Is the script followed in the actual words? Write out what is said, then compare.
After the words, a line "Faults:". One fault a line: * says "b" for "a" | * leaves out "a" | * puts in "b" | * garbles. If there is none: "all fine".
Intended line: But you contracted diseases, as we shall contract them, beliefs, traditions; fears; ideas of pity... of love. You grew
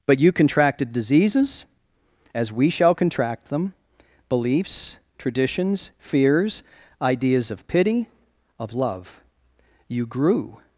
But you contracted diseases, as we shall contract them, beliefs, traditions; fears; ideas of pity... of love. You grew
Faults:
all fine